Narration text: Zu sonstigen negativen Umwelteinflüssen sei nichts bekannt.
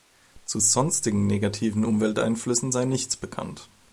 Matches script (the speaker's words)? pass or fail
pass